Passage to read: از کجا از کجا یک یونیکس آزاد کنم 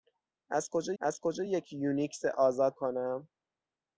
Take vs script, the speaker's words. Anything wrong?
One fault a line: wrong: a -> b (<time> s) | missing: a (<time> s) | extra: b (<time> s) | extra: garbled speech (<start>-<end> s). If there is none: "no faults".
no faults